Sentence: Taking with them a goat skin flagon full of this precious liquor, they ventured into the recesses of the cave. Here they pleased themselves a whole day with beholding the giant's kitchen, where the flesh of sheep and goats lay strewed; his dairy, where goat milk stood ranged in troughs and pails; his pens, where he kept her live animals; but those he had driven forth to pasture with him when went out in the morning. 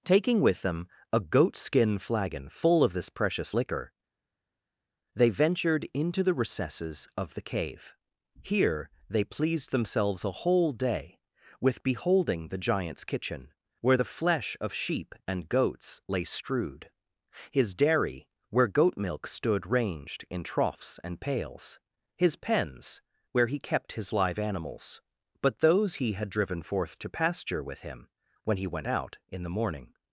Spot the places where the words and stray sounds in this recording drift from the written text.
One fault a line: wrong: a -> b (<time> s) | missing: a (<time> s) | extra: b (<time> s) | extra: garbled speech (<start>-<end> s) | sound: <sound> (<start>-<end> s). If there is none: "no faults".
wrong: her -> his (23.9 s)
extra: he (28.6 s)